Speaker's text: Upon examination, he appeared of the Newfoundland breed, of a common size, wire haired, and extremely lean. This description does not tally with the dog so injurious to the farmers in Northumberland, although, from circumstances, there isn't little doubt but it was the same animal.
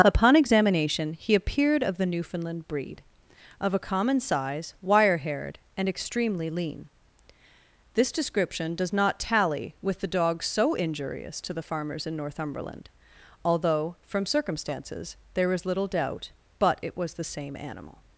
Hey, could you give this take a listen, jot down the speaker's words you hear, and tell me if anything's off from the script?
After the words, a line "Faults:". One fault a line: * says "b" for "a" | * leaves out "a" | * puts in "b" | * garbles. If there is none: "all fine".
Upon examination, he appeared of the Newfoundland breed, of a common size, wire haired, and extremely lean. This description does not tally with the dog so injurious to the farmers in Northumberland, although, from circumstances, there is little doubt but it was the same animal.
Faults:
* says "is" for "isn't"